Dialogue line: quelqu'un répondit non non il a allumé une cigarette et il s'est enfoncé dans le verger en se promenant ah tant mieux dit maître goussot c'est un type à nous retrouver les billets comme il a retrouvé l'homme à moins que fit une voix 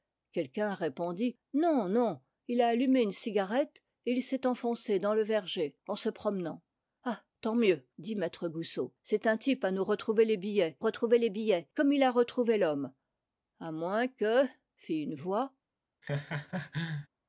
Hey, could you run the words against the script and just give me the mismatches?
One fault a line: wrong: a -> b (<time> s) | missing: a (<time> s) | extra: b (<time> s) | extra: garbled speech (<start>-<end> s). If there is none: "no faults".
extra: retrouver les billets (10.8 s)